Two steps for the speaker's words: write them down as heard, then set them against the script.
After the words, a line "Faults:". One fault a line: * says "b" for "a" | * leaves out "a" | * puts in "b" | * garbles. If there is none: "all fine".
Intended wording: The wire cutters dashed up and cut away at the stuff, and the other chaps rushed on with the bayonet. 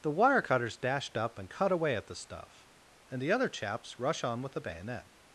The wire cutters dashed up and cut away at the stuff, and the other chaps rush on with the bayonet.
Faults:
* says "rush" for "rushed"